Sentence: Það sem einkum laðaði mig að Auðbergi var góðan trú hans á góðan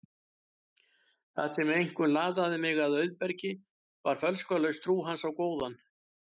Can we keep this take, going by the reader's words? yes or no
no